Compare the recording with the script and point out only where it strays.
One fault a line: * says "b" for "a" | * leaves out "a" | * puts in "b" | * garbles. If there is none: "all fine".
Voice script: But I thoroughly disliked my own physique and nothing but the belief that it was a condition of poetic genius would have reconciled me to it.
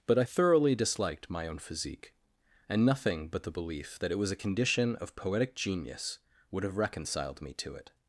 all fine